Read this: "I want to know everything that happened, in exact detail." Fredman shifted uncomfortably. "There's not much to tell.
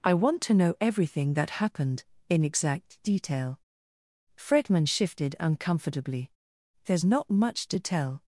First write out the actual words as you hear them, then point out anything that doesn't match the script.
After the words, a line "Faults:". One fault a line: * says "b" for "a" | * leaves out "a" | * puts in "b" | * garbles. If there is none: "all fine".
"I want to know everything that happened, in exact detail." Fredman shifted uncomfortably. "There's not much to tell.
Faults:
all fine